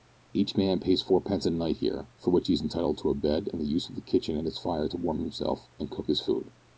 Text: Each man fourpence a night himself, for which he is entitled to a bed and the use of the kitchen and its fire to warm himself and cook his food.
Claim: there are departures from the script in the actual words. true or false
true